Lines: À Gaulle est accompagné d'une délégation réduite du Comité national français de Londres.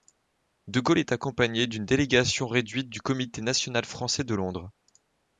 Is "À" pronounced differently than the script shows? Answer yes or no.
yes